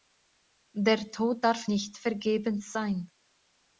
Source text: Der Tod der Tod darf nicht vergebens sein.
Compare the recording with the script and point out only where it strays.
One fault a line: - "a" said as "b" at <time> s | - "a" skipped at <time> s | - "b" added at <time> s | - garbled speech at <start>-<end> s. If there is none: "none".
- "der Tod" skipped at 1.4 s